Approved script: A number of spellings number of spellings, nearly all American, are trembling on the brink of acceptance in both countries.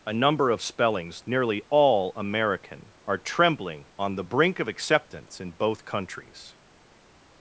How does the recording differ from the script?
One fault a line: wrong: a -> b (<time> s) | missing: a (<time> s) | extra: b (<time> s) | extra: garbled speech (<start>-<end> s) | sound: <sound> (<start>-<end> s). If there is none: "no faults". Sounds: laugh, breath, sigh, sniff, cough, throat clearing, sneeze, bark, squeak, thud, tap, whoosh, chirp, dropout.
missing: number of spellings (1.2 s)